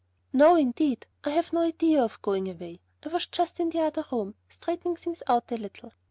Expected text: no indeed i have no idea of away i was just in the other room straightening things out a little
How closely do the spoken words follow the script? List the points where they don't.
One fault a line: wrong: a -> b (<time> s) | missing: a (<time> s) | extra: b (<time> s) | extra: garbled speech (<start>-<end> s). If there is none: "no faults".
extra: going (2.2 s)